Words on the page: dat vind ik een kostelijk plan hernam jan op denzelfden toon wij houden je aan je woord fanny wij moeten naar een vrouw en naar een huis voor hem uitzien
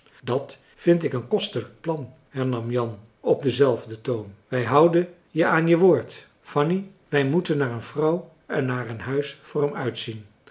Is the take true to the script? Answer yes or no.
yes